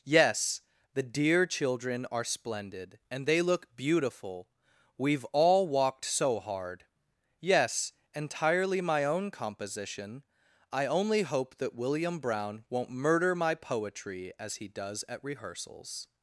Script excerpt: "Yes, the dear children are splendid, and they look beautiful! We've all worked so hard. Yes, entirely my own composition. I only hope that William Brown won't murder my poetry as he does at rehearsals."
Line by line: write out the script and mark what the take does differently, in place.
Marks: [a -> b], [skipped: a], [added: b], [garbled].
"Yes, the dear children are splendid, and they look beautiful! We've all [worked -> walked] so hard. Yes, entirely my own composition. I only hope that William Brown won't murder my poetry as he does at rehearsals."